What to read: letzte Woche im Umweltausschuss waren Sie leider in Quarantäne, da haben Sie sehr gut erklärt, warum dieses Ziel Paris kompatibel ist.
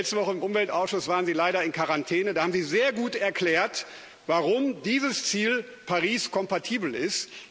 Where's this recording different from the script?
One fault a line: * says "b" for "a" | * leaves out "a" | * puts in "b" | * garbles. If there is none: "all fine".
all fine